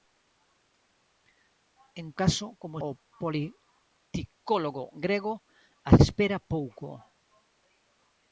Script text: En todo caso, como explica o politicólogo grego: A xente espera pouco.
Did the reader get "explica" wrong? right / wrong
wrong